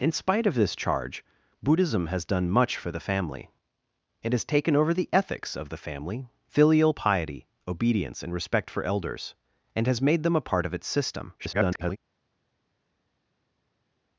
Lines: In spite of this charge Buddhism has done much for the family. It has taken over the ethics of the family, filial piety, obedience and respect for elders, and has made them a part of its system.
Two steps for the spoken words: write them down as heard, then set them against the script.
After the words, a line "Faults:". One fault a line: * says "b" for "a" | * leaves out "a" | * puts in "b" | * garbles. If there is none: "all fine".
In spite of this charge Buddhism has done much for the family. It has taken over the ethics of the family, filial piety, obedience and respect for elders, and has made them a part of its system. [garbled]
Faults:
* garbles